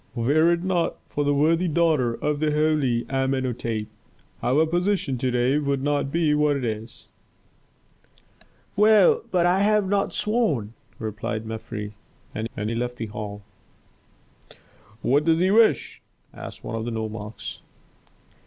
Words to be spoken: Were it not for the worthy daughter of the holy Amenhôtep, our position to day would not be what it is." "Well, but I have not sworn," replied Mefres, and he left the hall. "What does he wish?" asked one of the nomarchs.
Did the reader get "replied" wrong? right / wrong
right